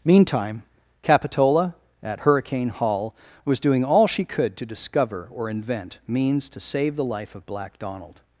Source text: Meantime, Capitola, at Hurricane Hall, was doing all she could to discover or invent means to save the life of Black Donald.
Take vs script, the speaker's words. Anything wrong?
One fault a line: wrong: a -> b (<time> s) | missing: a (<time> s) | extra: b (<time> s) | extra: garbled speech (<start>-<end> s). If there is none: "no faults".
no faults